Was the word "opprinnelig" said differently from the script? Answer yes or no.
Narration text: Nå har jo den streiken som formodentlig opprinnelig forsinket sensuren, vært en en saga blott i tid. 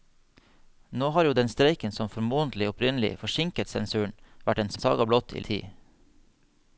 no